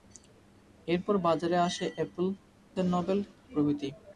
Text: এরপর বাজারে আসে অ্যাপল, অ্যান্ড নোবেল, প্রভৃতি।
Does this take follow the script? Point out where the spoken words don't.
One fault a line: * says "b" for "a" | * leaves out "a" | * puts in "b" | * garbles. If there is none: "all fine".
all fine